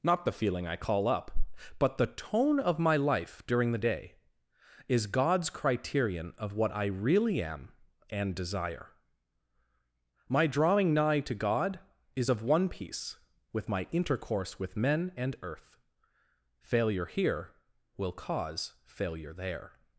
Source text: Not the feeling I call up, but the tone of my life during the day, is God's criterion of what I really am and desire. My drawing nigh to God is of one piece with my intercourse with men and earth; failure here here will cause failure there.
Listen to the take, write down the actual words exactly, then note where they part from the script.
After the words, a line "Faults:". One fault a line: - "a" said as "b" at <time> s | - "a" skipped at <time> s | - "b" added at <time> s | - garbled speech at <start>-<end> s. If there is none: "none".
Not the feeling I call up, but the tone of my life during the day, is God's criterion of what I really am and desire. My drawing nigh to God is of one piece with my intercourse with men and earth; failure here will cause failure there.
Faults:
- "here" skipped at 17.5 s